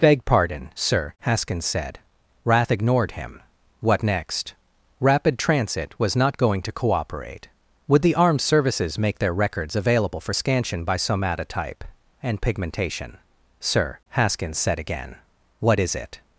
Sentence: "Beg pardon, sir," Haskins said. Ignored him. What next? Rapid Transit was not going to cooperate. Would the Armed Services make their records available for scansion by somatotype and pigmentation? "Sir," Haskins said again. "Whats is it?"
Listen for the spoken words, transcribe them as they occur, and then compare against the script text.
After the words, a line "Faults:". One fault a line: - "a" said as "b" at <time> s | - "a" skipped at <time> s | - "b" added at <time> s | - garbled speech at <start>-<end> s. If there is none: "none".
"Beg pardon, sir," Haskins said. Rath ignored him. What next? Rapid Transit was not going to cooperate. Would the Armed Services make their records available for scansion by somatotype and pigmentation? "Sir," Haskins said again. "What is it?"
Faults:
- "Rath" added at 2.4 s
- "Whats" said as "What" at 15.6 s